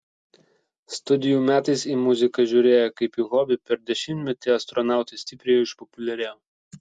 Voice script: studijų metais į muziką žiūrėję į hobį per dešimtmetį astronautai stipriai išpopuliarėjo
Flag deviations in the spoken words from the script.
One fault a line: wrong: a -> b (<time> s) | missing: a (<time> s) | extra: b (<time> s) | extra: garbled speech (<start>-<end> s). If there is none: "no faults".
extra: kaip (3.0 s)